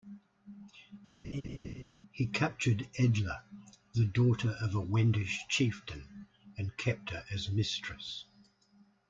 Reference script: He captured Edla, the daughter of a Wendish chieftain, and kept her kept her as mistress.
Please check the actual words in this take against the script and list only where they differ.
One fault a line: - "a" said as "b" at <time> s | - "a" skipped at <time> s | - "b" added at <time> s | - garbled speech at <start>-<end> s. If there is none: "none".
- "kept her" skipped at 7.2 s